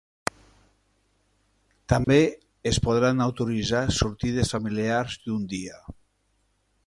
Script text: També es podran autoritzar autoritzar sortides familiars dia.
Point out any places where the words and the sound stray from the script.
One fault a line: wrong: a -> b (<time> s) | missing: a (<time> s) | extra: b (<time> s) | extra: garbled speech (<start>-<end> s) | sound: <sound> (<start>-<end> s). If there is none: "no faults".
sound: dropout (2.0-2.1 s)
missing: autoritzar (3.8 s)
extra: d'un (5.3 s)